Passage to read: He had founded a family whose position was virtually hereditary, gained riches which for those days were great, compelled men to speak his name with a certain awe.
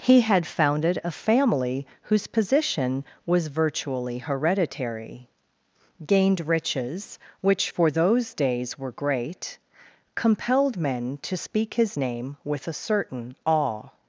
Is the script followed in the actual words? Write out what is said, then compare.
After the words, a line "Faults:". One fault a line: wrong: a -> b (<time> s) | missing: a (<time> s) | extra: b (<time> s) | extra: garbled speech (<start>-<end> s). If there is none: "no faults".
He had founded a family whose position was virtually hereditary, gained riches which for those days were great, compelled men to speak his name with a certain awe.
Faults:
no faults